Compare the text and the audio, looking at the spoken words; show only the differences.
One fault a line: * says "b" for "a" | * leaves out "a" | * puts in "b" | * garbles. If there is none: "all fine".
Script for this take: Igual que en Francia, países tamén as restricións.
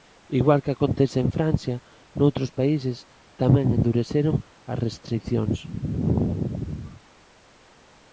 * puts in "acontece"
* puts in "noutros"
* puts in "endureceron"